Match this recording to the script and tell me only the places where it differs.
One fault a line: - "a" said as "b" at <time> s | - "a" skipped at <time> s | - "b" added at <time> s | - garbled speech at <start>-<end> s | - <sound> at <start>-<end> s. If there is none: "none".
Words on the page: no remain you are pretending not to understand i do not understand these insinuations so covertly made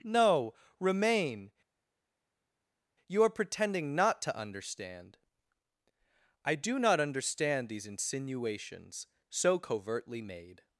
none